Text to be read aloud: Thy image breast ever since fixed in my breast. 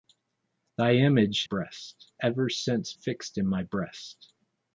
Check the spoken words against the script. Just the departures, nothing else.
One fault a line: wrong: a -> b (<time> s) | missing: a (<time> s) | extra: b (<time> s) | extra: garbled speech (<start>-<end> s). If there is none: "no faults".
no faults